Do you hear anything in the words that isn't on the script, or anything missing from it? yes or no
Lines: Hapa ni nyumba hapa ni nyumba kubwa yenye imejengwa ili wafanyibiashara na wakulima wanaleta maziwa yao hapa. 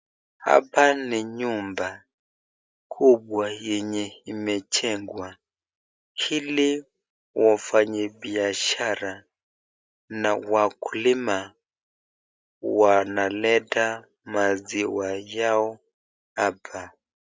yes